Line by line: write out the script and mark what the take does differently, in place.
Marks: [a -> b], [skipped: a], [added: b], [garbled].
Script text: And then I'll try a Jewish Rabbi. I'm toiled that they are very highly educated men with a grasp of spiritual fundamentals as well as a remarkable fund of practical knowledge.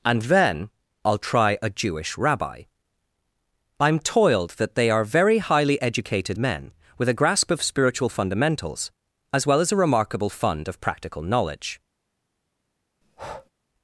And then I'll try a Jewish Rabbi. I'm toiled that they are very highly educated men with a grasp of spiritual fundamentals as well as a remarkable fund of practical knowledge.